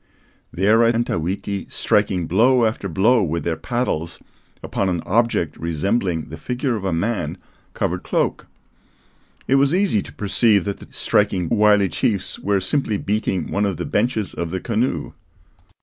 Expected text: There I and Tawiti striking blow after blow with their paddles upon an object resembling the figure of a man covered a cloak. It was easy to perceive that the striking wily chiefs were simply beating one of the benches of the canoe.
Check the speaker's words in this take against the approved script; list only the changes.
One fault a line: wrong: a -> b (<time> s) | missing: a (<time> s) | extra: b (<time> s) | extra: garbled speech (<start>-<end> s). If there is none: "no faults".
no faults